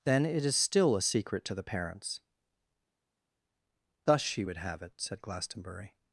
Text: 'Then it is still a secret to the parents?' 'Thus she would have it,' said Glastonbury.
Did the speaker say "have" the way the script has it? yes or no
yes